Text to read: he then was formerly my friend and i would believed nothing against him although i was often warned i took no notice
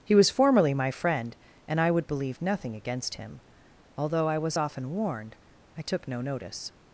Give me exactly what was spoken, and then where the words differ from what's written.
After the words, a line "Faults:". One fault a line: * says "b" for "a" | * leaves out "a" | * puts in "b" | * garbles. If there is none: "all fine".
he was formerly my friend and i would believe nothing against him although i was often warned i took no notice
Faults:
* leaves out "then"
* says "believe" for "believed"